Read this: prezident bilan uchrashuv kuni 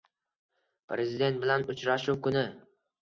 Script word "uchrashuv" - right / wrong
right